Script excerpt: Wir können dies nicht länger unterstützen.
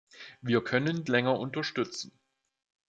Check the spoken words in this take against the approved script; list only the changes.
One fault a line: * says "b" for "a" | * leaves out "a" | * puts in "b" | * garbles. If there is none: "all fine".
* leaves out "dies nicht"